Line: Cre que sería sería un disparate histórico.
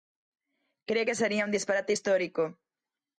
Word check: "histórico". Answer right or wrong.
right